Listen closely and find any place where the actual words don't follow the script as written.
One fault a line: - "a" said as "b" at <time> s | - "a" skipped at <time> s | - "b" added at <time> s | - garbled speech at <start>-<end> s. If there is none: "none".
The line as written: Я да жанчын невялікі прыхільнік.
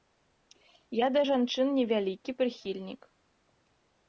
none